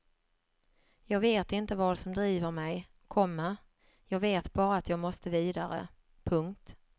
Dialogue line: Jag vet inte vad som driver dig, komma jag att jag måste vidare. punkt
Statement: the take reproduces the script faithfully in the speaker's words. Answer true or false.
false